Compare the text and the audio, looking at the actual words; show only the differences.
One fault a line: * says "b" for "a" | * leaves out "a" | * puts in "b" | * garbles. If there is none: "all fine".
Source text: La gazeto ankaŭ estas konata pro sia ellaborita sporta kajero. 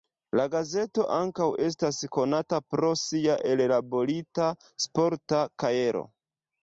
all fine